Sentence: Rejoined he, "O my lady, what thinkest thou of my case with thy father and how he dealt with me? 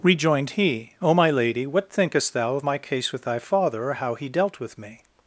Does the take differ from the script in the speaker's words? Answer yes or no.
yes